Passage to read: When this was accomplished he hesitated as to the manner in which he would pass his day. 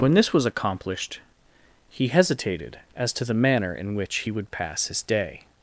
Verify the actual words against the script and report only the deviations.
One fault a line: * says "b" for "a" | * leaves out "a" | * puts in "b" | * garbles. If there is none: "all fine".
all fine